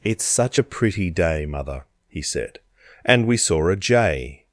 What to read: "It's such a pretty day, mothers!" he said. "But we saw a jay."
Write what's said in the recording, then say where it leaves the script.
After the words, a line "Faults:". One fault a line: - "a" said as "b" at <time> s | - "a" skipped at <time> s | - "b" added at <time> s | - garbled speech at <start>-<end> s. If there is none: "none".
"It's such a pretty day, mother!" he said. "And we saw a jay."
Faults:
- "mothers" said as "mother" at 1.4 s
- "But" said as "And" at 3.0 s